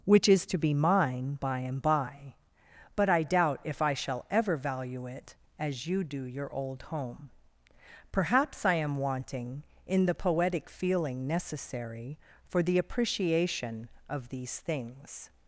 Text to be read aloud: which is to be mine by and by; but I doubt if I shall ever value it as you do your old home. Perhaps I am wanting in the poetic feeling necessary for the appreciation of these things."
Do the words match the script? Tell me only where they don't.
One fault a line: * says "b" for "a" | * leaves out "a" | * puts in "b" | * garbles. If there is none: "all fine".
all fine